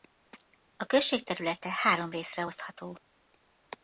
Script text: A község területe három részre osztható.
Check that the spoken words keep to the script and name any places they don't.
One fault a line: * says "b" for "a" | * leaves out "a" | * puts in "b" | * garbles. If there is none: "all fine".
all fine